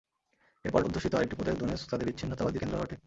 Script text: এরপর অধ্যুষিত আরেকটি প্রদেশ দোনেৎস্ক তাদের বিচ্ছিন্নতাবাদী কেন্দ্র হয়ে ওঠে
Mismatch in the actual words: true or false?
false